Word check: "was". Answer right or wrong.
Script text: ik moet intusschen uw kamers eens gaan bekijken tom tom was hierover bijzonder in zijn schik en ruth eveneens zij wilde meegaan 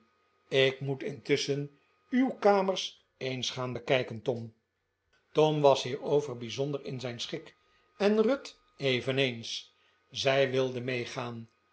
right